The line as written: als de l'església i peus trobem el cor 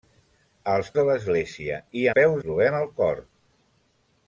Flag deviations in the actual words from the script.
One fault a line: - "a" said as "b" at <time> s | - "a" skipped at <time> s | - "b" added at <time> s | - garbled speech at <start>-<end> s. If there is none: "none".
none